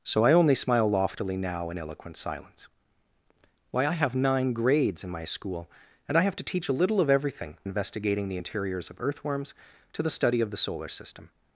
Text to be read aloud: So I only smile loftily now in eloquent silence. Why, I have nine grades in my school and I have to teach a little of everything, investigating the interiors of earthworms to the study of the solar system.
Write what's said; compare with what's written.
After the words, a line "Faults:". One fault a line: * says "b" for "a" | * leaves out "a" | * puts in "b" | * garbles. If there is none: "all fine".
So I only smile loftily now in eloquent silence. Why, I have nine grades in my school and I have to teach a little of everything, investigating the interiors of earthworms to the study of the solar system.
Faults:
all fine